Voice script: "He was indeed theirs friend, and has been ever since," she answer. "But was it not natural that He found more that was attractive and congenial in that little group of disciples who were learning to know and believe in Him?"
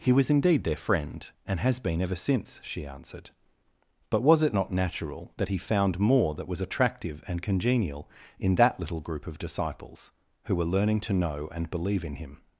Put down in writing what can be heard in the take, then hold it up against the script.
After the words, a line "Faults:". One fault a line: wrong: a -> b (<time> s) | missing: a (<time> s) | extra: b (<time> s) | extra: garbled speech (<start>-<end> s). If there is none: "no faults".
"He was indeed their friend, and has been ever since," she answered. "But was it not natural that He found more that was attractive and congenial in that little group of disciples who were learning to know and believe in Him?"
Faults:
wrong: theirs -> their (0.6 s)
wrong: answer -> answered (2.9 s)